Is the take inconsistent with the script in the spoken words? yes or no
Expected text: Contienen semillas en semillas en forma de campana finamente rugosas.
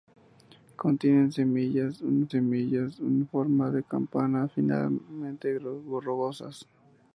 no